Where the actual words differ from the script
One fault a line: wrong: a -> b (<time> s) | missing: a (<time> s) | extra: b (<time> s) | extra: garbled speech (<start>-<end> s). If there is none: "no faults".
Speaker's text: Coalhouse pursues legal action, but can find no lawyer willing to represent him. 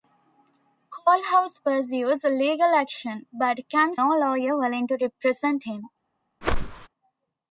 missing: find (4.0 s)